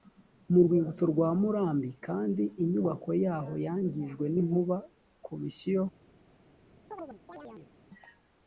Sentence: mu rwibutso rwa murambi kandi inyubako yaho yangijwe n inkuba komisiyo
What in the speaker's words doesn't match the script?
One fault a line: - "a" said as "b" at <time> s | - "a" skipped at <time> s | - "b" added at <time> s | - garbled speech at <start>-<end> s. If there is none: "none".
none